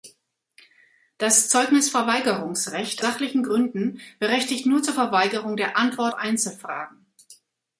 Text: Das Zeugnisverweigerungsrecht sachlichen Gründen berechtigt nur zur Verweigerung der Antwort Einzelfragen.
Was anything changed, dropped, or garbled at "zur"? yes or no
no